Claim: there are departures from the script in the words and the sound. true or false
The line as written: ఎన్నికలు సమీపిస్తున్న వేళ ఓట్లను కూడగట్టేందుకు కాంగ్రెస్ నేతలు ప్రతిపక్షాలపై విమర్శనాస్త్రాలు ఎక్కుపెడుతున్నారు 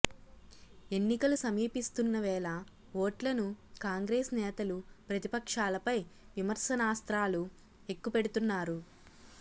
true